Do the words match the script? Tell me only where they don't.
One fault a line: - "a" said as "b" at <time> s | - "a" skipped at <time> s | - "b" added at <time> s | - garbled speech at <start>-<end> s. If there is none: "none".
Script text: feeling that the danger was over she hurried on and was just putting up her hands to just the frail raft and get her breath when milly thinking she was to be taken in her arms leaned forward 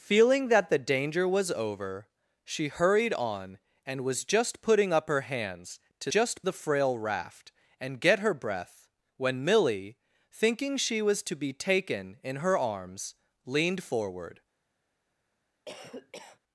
none